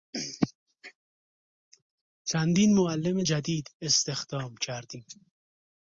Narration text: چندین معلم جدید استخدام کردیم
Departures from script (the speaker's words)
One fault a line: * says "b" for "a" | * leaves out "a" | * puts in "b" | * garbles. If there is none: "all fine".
all fine